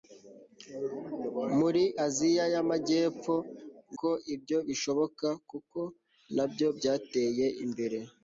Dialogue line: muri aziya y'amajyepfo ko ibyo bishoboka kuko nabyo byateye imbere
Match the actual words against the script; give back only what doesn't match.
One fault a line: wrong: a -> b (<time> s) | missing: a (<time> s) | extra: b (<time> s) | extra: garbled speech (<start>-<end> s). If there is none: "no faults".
no faults